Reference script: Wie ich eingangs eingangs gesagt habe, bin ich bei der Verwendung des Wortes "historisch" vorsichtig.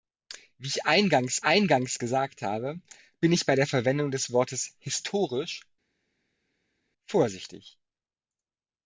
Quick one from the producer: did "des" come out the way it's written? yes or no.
yes